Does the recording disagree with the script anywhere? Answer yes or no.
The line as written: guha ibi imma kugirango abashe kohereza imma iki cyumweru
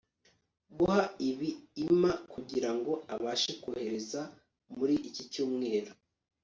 yes